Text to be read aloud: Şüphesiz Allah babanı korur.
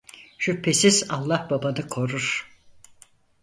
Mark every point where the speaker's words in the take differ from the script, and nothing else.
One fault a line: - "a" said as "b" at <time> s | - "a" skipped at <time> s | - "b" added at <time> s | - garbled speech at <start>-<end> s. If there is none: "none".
none